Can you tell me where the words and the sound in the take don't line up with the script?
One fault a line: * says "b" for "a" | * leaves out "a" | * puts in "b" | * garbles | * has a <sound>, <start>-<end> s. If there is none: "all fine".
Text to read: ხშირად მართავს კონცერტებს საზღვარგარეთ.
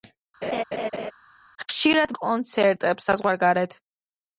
* has a laugh, 0.4-1.1 s
* leaves out "მართავს"